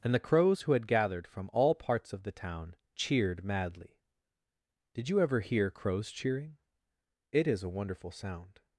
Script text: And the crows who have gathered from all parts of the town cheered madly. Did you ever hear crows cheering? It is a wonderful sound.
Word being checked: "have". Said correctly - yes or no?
no